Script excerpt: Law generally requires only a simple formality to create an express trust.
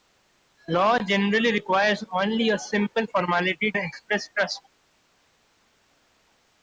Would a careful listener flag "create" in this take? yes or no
yes